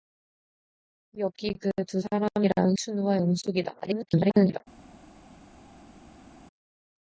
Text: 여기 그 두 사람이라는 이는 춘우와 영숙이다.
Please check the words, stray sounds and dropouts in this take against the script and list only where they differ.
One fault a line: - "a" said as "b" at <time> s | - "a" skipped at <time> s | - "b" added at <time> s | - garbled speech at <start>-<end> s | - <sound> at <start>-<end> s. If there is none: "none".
- "이는" skipped at 2.8 s
- garbled speech at 3.8-4.6 s